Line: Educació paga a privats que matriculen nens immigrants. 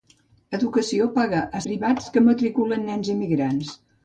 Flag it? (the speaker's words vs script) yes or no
no